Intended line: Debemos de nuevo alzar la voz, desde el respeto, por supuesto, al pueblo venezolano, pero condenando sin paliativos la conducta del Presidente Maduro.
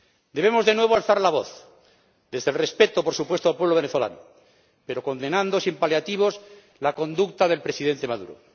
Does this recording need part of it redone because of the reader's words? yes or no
no